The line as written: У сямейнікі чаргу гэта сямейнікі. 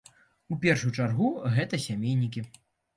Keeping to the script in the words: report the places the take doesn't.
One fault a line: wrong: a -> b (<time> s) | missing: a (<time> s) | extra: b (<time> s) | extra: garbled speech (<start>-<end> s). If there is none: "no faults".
wrong: сямейнікі -> першую (0.6 s)